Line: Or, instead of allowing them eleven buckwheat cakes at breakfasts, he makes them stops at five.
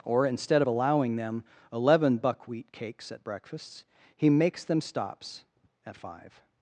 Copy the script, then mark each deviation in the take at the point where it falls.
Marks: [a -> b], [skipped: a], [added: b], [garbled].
Or, instead of allowing them eleven buckwheat cakes at breakfasts, he makes them stops at five.